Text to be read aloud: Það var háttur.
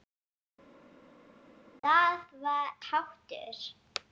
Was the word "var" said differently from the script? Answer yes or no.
no